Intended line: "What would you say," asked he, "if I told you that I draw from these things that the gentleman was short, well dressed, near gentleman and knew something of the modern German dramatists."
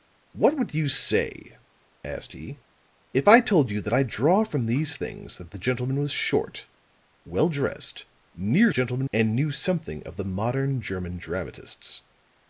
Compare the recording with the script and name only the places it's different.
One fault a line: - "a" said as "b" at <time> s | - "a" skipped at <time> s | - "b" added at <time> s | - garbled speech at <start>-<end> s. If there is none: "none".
none